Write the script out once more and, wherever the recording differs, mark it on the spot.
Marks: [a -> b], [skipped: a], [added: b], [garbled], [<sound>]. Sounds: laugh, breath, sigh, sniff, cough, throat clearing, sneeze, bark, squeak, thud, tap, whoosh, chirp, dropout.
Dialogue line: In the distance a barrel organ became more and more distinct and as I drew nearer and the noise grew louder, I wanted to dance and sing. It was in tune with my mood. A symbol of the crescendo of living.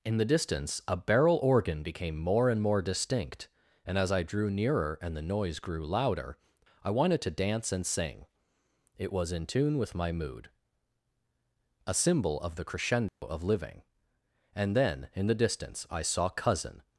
In the distance a barrel organ became more and more distinct and as I drew nearer and the noise grew louder, I wanted to dance and sing. It was in tune with my mood. A symbol of the crescendo [dropout] of living. [added: And then in the distance I saw Cousin]